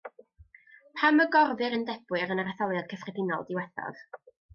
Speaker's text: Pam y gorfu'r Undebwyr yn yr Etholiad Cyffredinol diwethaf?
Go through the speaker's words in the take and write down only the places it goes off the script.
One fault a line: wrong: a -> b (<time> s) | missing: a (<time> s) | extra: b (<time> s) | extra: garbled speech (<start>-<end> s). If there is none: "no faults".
no faults